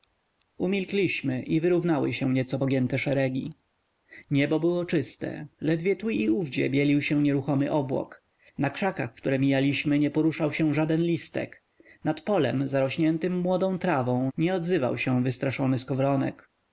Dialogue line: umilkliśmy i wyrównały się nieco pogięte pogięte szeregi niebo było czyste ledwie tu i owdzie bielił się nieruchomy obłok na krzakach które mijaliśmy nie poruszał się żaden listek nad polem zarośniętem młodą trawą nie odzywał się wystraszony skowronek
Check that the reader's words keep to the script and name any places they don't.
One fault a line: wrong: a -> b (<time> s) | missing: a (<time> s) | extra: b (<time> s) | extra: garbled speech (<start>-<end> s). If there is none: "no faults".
missing: pogięte (3.0 s)